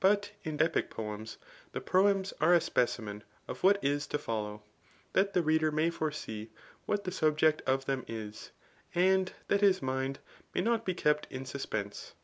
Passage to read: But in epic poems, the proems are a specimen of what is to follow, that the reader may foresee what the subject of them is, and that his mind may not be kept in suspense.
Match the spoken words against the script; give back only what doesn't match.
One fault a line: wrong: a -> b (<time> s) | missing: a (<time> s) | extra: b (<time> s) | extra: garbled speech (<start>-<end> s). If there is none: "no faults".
no faults